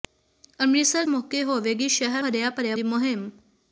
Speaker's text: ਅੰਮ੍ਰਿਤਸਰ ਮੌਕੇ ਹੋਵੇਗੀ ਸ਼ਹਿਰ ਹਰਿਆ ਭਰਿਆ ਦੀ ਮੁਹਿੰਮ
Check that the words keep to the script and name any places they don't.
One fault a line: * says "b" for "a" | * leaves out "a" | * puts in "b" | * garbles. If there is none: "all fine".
all fine